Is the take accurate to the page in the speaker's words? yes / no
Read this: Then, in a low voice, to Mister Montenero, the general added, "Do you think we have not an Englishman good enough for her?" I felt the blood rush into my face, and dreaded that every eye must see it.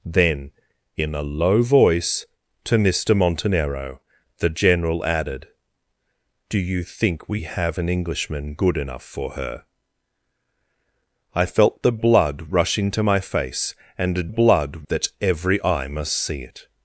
no